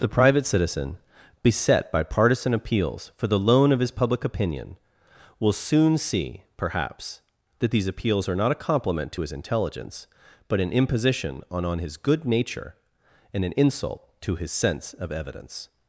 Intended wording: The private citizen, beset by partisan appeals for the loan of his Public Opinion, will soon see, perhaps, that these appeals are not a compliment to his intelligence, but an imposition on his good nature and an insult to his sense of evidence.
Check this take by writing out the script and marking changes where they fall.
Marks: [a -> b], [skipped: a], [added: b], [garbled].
The private citizen, beset by partisan appeals for the loan of his Public Opinion, will soon see, perhaps, that these appeals are not a compliment to his intelligence, but an imposition on [added: on] his good nature and an insult to his sense of evidence.